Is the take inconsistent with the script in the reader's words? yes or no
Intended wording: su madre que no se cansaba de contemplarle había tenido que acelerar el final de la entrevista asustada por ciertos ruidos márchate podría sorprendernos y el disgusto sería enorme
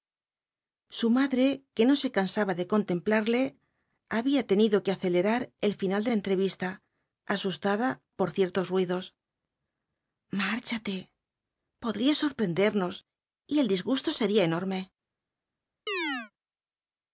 no